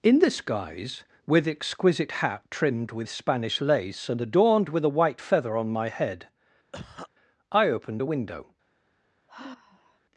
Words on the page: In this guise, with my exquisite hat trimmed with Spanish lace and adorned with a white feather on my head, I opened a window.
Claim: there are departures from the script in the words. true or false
true